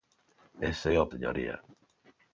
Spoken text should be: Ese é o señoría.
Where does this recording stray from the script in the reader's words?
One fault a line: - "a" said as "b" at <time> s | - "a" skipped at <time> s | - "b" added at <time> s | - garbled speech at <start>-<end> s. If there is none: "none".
none